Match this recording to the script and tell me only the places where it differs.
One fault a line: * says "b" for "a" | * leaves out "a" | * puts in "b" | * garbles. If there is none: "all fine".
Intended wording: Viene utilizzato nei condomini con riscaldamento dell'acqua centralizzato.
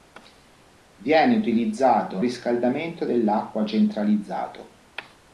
* leaves out "nei condomini con"